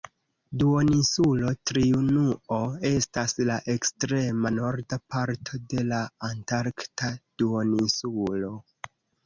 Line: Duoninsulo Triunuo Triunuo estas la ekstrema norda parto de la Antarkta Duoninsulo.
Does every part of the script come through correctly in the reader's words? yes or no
no